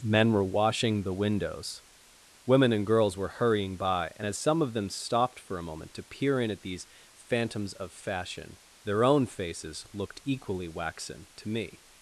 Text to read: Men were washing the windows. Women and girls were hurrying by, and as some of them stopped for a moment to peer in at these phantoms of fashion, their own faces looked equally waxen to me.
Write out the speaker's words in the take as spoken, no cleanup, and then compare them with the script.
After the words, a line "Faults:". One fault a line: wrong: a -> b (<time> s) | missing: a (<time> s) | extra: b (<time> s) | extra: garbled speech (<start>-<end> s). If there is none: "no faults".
Men were washing the windows. Women and girls were hurrying by, and as some of them stopped for a moment to peer in at these phantoms of fashion, their own faces looked equally waxen to me.
Faults:
no faults